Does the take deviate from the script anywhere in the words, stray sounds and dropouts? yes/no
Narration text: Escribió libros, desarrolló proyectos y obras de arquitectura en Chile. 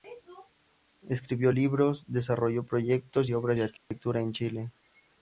yes